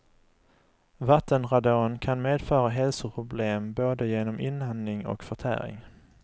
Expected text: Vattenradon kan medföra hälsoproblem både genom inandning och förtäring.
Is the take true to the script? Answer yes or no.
yes